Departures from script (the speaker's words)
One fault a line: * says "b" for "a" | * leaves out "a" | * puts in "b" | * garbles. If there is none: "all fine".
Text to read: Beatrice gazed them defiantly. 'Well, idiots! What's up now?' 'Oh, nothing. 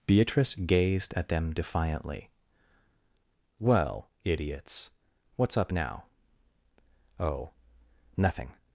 * puts in "at"